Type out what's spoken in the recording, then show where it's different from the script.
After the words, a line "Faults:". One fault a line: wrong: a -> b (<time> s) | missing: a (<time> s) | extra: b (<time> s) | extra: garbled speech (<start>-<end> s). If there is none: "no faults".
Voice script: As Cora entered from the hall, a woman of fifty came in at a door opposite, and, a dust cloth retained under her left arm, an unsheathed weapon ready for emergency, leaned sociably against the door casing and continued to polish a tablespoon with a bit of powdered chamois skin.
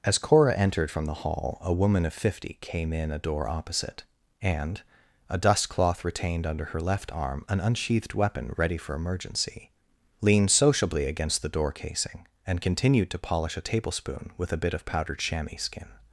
As Cora entered from the hall, a woman of fifty came in a door opposite, and, a dust cloth retained under her left arm, an unsheathed weapon ready for emergency, leaned sociably against the door casing and continued to polish a tablespoon with a bit of powdered chamois skin.
Faults:
missing: at (3.1 s)